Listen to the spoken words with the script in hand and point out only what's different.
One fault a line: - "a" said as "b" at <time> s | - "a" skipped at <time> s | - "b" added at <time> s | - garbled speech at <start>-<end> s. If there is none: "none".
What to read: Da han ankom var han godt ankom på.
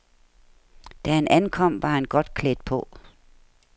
- "ankom" said as "klædt" at 2.3 s